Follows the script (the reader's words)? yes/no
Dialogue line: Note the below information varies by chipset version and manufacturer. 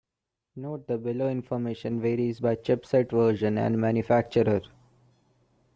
yes